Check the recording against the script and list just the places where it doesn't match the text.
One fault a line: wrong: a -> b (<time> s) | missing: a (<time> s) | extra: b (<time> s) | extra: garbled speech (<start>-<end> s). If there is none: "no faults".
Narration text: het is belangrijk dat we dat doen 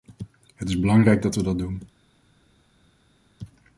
no faults